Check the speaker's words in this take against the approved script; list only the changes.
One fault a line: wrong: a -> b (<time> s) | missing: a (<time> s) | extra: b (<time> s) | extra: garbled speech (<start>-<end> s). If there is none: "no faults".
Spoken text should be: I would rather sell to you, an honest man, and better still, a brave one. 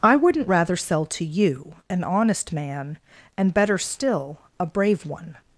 wrong: would -> wouldn't (0.1 s)